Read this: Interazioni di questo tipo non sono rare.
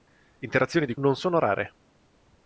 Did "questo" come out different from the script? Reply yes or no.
yes